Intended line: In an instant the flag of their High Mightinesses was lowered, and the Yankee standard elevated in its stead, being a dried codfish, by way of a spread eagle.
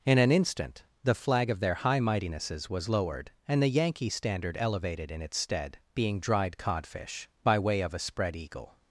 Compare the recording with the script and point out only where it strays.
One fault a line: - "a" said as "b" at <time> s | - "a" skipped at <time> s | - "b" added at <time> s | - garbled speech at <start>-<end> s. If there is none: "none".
- "a" skipped at 6.2 s